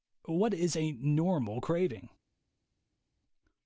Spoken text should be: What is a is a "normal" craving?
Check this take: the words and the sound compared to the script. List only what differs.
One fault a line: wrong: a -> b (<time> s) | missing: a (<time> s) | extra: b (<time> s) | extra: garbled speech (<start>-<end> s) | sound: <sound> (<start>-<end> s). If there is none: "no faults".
missing: is a (0.9 s)